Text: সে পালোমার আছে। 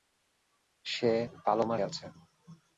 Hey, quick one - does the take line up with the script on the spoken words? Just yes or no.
yes